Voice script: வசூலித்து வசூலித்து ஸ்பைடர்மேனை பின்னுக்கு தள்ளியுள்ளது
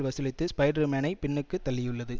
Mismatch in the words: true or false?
true